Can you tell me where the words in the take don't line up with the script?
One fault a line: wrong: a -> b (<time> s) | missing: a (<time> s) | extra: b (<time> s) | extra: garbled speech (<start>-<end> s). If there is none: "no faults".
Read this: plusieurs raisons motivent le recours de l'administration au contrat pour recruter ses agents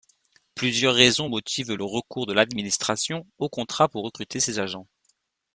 no faults